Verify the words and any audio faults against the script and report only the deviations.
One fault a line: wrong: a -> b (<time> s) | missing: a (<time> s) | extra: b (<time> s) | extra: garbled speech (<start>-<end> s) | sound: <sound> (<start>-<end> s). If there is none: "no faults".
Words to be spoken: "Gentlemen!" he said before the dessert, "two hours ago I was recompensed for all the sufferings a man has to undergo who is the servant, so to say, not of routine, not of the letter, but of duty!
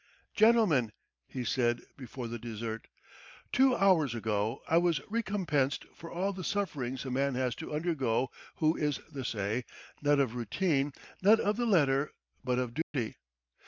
missing: servant so to (9.2 s)
sound: dropout (12.8-12.9 s)